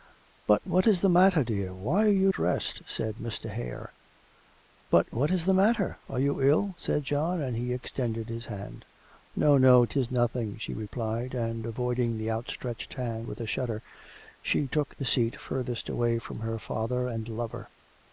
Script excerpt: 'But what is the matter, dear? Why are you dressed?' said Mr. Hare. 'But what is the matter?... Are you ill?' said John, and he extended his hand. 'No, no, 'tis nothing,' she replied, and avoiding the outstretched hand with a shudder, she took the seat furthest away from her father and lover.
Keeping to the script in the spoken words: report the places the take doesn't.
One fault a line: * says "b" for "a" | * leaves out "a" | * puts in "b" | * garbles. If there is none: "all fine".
all fine